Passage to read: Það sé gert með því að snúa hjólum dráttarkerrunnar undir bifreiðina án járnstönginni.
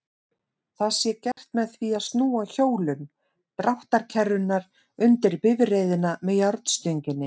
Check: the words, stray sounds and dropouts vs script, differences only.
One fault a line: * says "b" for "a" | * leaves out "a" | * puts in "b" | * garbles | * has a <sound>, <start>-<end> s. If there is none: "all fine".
* has a dropout, 1.3-1.4 s
* says "með" for "án"